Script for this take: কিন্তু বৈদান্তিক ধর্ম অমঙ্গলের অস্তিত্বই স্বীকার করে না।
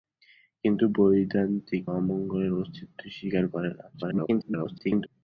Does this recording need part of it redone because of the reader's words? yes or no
yes